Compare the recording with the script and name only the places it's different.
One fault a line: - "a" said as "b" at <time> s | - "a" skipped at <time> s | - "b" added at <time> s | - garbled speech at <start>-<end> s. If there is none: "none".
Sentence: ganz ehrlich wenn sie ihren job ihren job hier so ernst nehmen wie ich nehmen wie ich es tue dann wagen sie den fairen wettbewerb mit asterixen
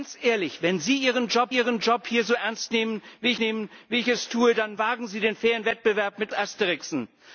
none